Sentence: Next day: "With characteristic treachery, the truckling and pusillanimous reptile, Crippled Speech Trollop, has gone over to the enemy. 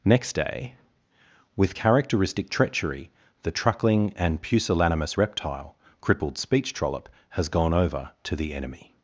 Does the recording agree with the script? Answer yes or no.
yes